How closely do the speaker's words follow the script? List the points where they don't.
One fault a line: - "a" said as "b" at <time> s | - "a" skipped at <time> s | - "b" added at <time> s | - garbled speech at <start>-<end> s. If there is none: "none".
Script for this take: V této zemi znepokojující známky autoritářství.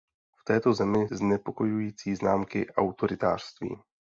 none